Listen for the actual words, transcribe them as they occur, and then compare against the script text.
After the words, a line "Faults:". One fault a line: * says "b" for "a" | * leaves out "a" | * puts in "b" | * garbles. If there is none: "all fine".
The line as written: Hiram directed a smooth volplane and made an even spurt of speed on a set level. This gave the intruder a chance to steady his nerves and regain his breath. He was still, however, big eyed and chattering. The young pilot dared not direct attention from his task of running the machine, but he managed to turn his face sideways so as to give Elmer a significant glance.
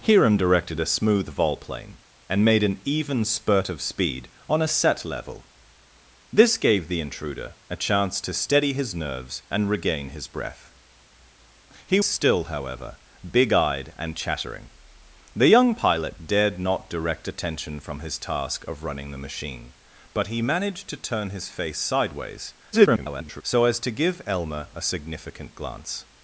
Hiram directed a smooth volplane and made an even spurt of speed on a set level. This gave the intruder a chance to steady his nerves and regain his breath. He still, however, big eyed and chattering. The young pilot dared not direct attention from his task of running the machine, but he managed to turn his face sideways [garbled] so as to give Elmer a significant glance.
Faults:
* leaves out "was"
* garbles